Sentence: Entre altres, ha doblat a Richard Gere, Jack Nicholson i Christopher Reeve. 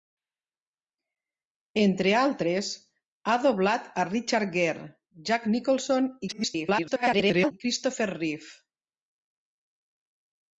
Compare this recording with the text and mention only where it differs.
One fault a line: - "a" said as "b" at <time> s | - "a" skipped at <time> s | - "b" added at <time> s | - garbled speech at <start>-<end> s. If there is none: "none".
- garbled speech at 6.3-7.5 s